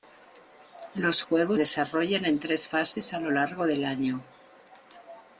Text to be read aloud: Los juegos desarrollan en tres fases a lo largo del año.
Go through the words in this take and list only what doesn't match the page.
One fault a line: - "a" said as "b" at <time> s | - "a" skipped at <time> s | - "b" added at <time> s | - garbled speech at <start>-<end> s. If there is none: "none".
none